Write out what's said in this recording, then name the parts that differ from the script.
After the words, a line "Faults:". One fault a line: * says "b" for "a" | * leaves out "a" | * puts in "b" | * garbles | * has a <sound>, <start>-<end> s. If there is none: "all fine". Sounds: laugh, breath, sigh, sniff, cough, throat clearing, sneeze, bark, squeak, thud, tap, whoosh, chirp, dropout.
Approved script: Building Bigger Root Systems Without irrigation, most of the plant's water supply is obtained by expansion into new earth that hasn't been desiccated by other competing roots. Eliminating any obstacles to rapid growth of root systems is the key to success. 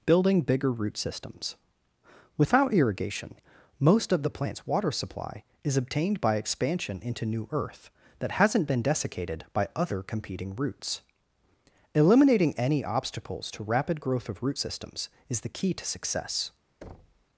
Building Bigger Root Systems Without irrigation, most of the plant's water supply is obtained by expansion into new earth that hasn't been desiccated by other competing roots. Eliminating any obstacles to rapid growth of root systems is the key to success.
Faults:
* has a thud, 16.8-17.3 s